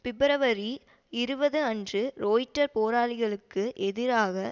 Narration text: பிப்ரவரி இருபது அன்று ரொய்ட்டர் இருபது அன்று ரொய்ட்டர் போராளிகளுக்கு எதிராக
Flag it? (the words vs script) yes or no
yes